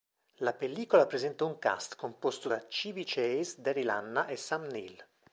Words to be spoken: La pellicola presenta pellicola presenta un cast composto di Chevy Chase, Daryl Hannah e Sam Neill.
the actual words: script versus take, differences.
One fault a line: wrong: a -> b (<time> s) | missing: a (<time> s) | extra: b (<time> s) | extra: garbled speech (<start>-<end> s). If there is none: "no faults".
missing: pellicola presenta (1.4 s)
wrong: di -> da (2.5 s)